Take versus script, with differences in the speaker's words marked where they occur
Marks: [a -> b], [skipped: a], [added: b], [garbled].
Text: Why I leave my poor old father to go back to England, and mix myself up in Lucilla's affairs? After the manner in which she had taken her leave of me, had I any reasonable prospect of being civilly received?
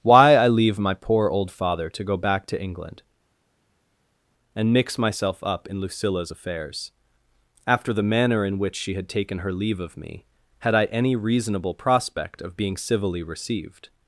Why I leave my poor old father to go back to England, and mix myself up in Lucilla's affairs? After the manner in which she had taken her leave of me, had I any reasonable prospect of being civilly received?